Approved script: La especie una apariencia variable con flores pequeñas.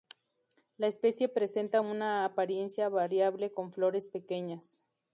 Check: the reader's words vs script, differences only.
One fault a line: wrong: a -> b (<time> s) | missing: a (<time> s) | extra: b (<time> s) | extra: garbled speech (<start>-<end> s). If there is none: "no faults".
extra: presenta (1.3 s)